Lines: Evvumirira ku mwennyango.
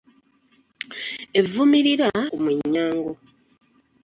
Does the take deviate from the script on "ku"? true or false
false